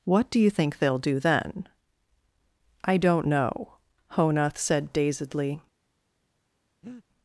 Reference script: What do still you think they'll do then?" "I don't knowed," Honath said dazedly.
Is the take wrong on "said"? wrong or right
right